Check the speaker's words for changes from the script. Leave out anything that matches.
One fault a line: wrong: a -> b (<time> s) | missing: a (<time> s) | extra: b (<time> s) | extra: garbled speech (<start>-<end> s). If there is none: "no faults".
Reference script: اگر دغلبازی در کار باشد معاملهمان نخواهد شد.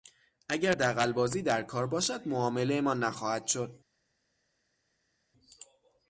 no faults